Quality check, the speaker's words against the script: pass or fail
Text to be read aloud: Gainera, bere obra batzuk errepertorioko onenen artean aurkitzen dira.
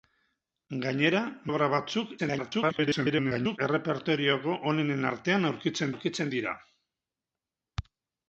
fail